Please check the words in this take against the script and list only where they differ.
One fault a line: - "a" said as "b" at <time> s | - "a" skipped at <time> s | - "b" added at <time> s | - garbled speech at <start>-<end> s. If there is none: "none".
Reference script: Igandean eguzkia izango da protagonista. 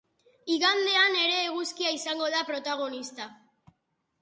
- "ere" added at 1.2 s